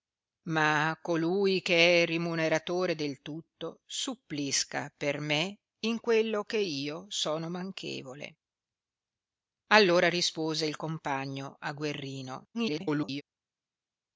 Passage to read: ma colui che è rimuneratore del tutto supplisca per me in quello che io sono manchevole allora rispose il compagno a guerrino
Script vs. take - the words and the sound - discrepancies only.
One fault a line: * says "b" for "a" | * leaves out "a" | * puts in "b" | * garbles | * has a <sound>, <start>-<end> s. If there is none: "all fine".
* garbles